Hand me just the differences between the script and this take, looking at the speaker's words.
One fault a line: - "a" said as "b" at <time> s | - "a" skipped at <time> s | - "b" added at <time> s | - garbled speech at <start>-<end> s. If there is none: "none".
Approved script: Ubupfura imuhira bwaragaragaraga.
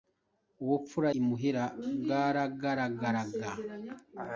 none